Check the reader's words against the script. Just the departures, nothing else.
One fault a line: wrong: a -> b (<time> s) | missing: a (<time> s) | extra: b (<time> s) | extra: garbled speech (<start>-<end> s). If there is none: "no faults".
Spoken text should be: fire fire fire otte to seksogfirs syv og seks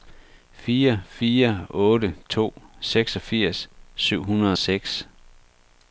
missing: fire (1.7 s)
extra: hundrede (4.2 s)